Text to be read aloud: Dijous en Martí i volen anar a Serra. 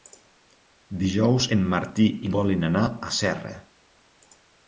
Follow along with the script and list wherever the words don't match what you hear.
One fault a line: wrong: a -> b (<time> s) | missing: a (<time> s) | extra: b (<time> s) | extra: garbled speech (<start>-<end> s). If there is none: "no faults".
no faults